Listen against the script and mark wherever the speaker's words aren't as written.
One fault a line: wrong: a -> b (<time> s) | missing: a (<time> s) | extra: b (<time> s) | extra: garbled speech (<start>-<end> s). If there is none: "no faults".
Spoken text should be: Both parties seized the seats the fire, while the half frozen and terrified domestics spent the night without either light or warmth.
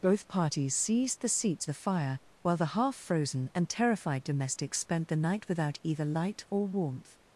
no faults